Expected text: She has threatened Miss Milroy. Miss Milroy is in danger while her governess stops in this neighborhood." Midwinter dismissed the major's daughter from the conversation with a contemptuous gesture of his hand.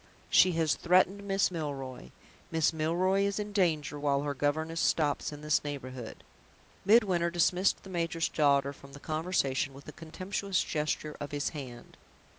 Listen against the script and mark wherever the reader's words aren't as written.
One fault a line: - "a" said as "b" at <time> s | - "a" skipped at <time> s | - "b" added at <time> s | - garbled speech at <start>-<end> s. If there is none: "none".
none